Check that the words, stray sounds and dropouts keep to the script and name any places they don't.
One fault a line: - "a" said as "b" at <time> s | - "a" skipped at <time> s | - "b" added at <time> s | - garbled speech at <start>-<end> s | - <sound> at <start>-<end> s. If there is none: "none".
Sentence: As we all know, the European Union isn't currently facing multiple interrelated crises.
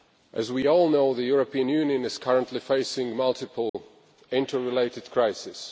- "isn't" said as "is" at 2.0 s
- dropout at 3.7-3.7 s